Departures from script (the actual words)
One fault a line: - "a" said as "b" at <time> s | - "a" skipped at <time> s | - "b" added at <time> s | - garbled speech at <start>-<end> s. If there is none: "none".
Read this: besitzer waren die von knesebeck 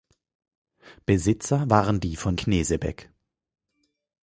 none